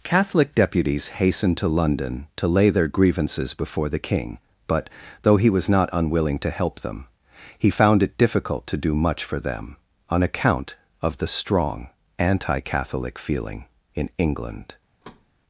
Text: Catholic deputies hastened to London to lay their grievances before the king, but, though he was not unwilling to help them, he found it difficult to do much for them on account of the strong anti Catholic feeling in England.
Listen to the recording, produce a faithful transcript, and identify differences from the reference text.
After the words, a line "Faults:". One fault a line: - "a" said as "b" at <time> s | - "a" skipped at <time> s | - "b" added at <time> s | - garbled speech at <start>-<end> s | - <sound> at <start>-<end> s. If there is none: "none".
Catholic deputies hastened to London to lay their grievances before the king, but, though he was not unwilling to help them, he found it difficult to do much for them on account of the strong anti Catholic feeling in England.
Faults:
- thud at 15.0-15.3 s